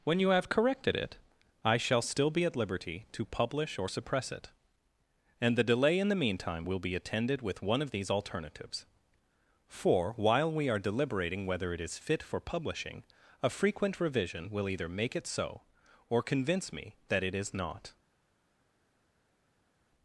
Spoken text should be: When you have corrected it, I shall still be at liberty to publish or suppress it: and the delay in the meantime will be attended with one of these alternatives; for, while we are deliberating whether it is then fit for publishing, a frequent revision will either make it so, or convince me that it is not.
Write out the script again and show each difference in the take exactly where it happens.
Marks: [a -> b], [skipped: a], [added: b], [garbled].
When you have corrected it, I shall still be at liberty to publish or suppress it: and the delay in the meantime will be attended with one of these alternatives; for, while we are deliberating whether it is [skipped: then] fit for publishing, a frequent revision will either make it so, or convince me that it is not.